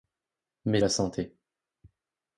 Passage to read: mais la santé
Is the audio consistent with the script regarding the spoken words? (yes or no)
yes